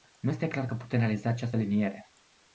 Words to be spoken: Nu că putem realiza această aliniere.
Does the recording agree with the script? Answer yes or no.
no